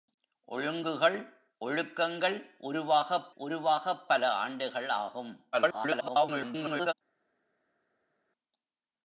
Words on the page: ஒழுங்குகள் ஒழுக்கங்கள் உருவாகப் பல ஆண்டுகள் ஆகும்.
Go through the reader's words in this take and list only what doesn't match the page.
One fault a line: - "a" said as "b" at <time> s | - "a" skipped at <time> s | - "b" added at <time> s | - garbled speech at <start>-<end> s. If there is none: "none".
- "உருவாகப்" added at 3.3 s
- garbled speech at 5.5-6.9 s